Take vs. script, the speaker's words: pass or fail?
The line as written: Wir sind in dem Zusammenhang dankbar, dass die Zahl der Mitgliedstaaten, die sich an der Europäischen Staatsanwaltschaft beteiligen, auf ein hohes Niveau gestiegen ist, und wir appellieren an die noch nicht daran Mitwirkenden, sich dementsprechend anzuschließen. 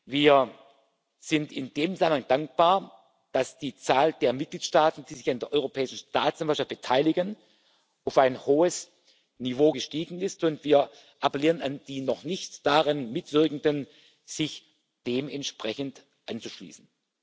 pass